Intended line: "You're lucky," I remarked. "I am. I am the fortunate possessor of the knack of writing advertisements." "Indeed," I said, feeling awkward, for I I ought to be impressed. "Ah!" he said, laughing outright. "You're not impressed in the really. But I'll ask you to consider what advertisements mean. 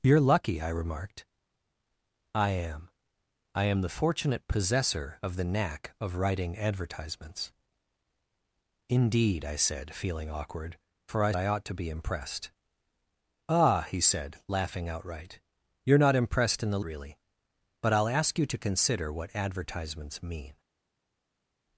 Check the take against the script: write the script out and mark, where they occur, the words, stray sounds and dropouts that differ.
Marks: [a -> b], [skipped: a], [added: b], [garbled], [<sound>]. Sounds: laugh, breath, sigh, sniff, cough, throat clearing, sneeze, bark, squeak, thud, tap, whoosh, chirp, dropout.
"You're lucky," I remarked. "I am. I am the fortunate possessor of the knack of writing advertisements." "Indeed," I said, feeling awkward, for I I ought to be impressed. "Ah!" he said, laughing outright. "You're not impressed in the really. But I'll ask you to consider what advertisements mean.